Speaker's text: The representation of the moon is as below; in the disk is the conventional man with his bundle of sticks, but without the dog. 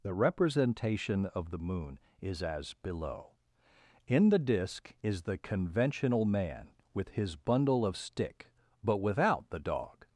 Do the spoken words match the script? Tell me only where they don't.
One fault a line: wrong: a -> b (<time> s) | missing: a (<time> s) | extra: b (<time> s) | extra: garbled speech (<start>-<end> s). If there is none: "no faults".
wrong: sticks -> stick (8.0 s)